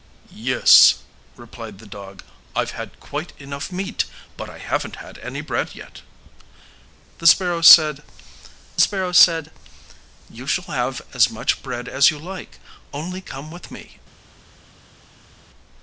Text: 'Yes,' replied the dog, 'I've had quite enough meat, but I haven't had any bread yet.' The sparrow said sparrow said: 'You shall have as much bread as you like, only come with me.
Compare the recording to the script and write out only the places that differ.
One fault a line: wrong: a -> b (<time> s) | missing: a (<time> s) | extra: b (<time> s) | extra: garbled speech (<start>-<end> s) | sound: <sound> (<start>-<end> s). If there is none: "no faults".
no faults